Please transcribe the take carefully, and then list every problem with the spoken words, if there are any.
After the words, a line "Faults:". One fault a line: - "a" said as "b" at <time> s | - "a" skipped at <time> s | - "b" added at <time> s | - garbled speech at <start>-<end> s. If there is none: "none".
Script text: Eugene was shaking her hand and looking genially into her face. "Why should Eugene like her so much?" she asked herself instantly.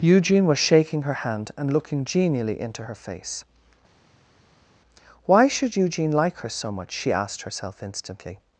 Eugene was shaking her hand and looking genially into her face. "Why should Eugene like her so much?" she asked herself instantly.
Faults:
none